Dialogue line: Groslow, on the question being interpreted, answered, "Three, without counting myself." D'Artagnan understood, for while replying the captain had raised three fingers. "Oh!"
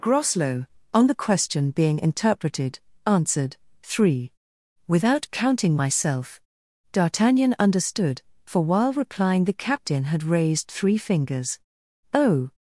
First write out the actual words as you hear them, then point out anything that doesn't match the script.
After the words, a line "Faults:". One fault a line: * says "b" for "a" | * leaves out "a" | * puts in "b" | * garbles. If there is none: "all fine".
Groslow, on the question being interpreted, answered, "Three, without counting myself." D'Artagnan understood, for while replying the captain had raised three fingers. "Oh!"
Faults:
all fine